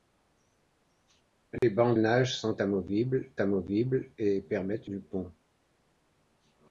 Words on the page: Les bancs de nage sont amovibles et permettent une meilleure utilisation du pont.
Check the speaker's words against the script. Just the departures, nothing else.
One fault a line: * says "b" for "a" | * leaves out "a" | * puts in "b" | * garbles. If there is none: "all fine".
* leaves out "de"
* puts in "amovibles"
* leaves out "une meilleure utilisation"